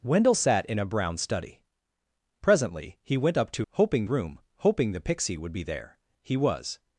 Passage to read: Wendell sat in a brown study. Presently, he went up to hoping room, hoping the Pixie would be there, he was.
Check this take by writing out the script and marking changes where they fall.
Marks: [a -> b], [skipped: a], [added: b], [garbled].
Wendell sat in a brown study. Presently, he went up to hoping room, hoping the Pixie would be there, he was.